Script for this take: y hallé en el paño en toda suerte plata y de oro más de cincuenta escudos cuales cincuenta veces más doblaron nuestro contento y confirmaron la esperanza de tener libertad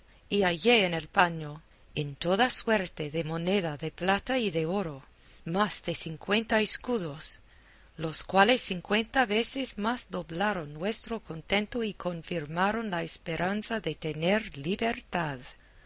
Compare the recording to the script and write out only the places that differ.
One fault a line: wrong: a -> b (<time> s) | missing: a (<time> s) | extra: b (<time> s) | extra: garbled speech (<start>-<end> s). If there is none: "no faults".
extra: de moneda de (3.1 s)
extra: los (8.0 s)